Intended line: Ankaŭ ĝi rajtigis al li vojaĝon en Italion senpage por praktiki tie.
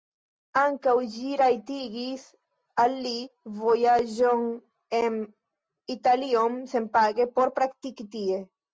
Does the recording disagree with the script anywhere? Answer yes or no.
no